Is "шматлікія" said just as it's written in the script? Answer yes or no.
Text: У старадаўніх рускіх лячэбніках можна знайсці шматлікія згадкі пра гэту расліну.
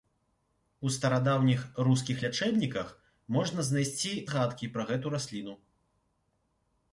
no